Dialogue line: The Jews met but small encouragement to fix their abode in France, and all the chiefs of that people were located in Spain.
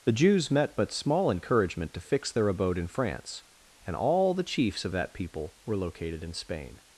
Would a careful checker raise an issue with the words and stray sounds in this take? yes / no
no